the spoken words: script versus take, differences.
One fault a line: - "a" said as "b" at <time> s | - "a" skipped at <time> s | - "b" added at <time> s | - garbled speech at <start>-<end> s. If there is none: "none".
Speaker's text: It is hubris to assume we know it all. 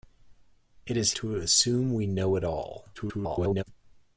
- "hubris" skipped at 1.1 s
- garbled speech at 3.0-3.6 s